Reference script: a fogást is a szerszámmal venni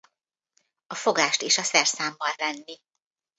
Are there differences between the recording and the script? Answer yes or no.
no